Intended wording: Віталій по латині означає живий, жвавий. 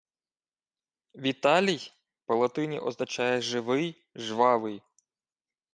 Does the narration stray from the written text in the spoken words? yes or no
no